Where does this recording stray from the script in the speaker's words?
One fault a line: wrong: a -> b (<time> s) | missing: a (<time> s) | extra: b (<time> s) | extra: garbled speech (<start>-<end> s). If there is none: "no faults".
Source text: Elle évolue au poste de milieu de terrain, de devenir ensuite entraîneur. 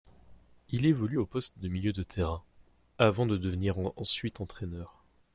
wrong: Elle -> Il (0.7 s)
extra: avant (3.0 s)